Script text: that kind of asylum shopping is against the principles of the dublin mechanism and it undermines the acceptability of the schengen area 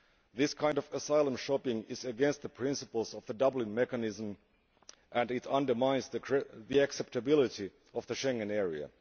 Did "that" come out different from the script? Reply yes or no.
yes